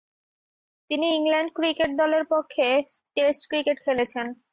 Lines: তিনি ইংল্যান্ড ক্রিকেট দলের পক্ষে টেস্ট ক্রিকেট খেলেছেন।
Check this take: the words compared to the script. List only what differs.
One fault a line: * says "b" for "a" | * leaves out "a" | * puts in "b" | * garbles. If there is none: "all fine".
all fine